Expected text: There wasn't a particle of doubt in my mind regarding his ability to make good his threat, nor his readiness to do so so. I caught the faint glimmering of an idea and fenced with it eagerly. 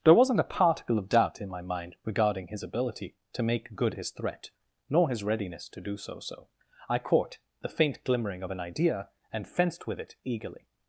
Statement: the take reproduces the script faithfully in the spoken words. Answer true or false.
true